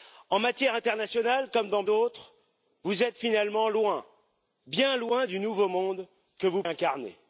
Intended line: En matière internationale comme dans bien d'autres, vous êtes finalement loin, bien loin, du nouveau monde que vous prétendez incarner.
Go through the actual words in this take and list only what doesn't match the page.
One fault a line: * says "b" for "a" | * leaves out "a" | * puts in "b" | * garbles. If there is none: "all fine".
* leaves out "bien"
* leaves out "prétendez"